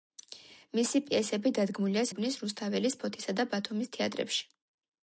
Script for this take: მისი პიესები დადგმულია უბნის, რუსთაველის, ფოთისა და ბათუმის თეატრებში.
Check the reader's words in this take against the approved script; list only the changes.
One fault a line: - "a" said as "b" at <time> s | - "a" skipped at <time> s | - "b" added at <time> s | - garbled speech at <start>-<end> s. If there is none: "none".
none